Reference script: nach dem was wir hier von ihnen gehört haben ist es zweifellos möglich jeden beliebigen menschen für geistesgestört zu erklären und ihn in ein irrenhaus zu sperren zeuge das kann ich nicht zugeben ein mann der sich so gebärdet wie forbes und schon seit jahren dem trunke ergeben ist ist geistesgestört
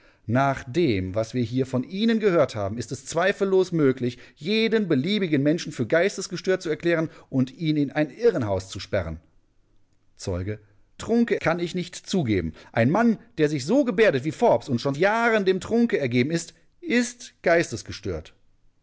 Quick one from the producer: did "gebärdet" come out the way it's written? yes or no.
yes